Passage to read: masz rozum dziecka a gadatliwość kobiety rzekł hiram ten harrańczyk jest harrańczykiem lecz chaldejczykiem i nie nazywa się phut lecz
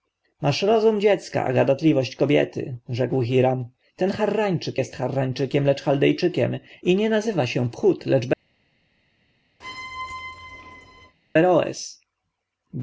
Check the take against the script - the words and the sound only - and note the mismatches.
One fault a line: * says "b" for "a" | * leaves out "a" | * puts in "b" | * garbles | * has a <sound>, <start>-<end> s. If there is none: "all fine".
* has a squeak, 9.6-11.2 s